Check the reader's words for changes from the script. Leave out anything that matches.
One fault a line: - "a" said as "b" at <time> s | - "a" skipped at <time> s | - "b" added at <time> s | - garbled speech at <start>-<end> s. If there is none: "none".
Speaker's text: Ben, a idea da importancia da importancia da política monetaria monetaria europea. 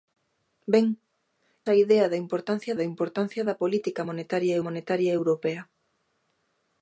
none